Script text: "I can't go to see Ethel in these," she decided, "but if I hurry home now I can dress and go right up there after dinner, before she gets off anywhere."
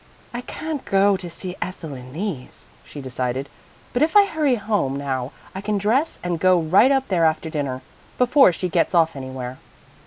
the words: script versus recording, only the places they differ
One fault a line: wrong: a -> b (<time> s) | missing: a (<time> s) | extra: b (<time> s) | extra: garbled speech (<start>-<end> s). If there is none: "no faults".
no faults